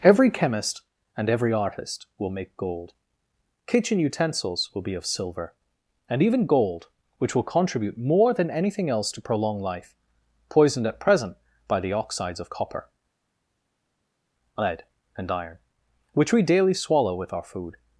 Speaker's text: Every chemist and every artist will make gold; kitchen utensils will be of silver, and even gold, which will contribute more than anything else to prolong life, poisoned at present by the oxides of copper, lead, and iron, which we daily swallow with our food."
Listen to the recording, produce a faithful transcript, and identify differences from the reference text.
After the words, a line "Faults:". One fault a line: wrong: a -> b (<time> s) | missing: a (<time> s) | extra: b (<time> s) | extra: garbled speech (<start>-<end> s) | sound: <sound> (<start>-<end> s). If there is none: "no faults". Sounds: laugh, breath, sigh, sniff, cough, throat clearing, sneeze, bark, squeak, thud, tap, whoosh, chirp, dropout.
Every chemist and every artist will make gold; kitchen utensils will be of silver, and even gold, which will contribute more than anything else to prolong life, poisoned at present by the oxides of copper, lead, and iron, which we daily swallow with our food."
Faults:
no faults